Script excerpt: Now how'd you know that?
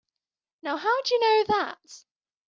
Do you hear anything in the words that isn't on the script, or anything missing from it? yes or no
no